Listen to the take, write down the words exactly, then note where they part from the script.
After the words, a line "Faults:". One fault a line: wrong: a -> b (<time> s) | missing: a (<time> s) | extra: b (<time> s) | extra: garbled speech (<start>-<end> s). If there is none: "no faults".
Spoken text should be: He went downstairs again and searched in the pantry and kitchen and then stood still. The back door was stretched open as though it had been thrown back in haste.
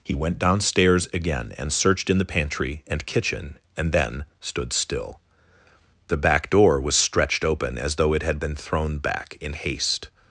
He went downstairs again and searched in the pantry and kitchen and then stood still. The back door was stretched open as though it had been thrown back in haste.
Faults:
no faults